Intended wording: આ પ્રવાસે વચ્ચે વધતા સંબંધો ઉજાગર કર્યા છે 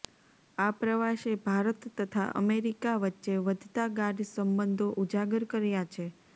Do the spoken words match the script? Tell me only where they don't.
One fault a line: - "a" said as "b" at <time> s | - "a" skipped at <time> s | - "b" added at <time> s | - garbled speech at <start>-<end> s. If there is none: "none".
- "ભારત તથા અમેરિકા" added at 1.4 s
- "ગાઢ" added at 4.0 s